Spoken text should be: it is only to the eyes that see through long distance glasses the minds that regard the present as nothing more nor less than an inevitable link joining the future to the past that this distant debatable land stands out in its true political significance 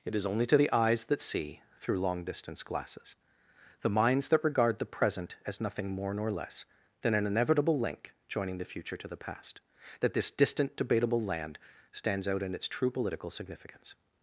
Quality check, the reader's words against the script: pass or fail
pass